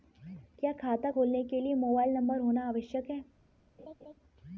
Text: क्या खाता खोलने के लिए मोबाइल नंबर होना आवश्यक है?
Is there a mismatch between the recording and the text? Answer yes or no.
no